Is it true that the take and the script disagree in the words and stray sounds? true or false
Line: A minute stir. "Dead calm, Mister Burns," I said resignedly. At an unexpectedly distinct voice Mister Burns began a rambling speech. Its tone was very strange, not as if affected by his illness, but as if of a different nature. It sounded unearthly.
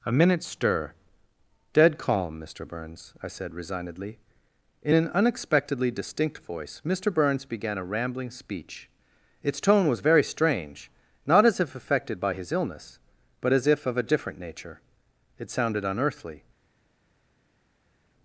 true